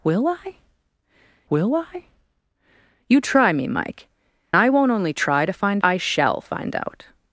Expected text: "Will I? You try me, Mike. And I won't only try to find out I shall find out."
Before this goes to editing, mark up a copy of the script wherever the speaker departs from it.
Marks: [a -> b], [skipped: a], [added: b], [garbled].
"Will I? [added: will I] You try me, Mike. [skipped: And] I won't only try to find [skipped: out] I shall find out."